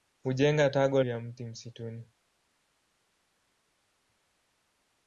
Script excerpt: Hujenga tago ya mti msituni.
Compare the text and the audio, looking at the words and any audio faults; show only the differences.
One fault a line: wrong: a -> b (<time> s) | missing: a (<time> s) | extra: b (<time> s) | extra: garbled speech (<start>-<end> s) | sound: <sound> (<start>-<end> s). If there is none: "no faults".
no faults